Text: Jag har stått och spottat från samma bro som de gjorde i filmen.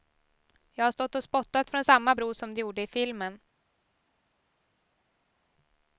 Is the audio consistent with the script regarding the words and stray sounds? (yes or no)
yes